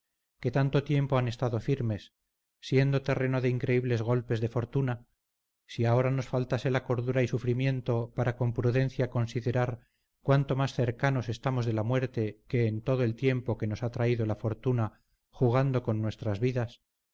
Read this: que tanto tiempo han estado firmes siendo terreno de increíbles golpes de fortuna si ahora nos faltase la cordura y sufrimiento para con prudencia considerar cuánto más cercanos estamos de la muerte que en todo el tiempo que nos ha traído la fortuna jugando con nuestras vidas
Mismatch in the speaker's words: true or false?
false